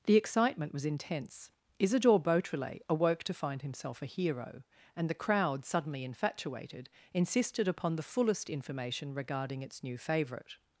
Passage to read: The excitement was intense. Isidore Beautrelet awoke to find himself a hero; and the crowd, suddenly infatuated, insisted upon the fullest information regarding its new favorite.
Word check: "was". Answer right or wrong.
right